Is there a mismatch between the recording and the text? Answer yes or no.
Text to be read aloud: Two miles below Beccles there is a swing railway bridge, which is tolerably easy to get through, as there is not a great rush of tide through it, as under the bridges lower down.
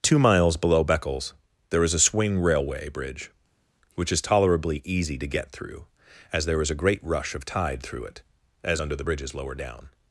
yes